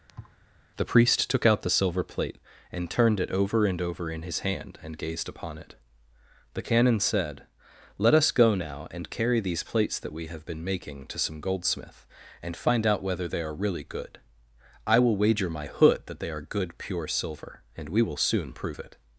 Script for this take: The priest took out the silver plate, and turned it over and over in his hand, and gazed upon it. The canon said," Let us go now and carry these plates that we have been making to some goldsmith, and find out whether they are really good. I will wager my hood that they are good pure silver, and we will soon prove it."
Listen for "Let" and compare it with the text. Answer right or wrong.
right